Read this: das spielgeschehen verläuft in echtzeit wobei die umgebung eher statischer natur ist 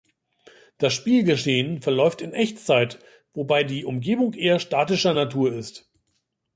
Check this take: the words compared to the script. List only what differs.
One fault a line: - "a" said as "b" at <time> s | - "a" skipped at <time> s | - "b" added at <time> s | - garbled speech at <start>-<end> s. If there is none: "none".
none